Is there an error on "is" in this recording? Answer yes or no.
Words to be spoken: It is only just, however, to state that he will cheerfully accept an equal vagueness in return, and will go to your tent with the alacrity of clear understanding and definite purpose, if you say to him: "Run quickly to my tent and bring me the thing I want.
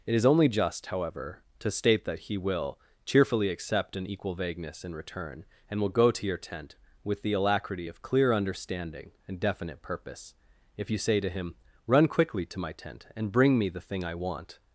no